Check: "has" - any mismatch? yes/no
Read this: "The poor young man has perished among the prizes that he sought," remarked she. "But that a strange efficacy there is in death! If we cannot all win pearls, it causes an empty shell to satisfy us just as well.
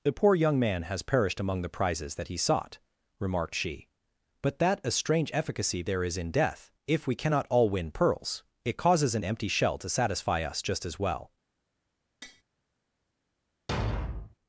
no